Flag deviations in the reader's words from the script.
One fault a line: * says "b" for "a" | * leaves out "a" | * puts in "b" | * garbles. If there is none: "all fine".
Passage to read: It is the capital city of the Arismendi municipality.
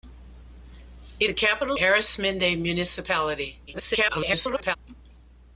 * leaves out "is"
* leaves out "city of the"
* garbles